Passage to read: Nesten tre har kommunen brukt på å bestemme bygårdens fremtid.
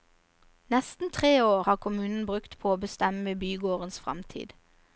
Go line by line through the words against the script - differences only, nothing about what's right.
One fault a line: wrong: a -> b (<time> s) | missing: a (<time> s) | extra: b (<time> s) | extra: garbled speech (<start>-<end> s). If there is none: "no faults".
extra: år (1.4 s)